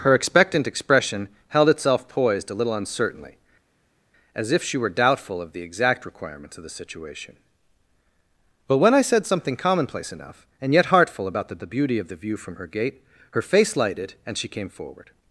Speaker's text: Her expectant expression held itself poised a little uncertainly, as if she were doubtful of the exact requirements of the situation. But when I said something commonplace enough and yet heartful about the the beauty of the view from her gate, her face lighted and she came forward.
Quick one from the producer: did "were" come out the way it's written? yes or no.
yes